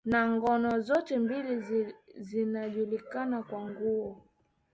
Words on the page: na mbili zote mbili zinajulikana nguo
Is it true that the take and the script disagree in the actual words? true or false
true